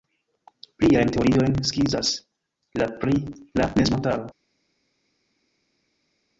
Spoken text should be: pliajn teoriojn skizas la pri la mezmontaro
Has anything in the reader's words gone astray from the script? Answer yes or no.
no